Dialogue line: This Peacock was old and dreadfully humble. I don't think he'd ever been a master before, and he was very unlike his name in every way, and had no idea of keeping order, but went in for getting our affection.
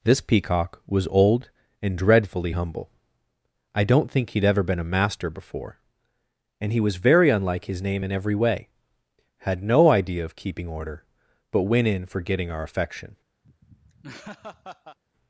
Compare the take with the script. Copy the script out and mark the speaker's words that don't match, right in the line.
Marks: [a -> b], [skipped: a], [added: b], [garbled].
This Peacock was old and dreadfully humble. I don't think he'd ever been a master before, and he was very unlike his name in every way, [skipped: and] had no idea of keeping order, but went in for getting our affection.